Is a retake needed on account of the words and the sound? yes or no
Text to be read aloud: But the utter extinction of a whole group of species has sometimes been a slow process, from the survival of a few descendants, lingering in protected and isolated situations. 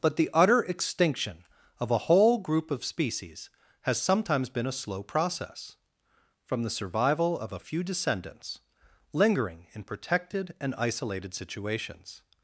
no